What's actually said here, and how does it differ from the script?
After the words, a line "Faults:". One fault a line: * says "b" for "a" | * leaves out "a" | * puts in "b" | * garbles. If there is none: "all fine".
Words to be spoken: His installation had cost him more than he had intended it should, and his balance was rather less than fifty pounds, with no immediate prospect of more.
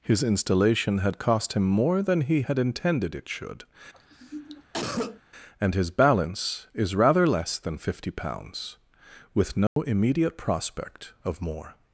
His installation had cost him more than he had intended it should, and his balance is rather less than fifty pounds, with no immediate prospect of more.
Faults:
* says "is" for "was"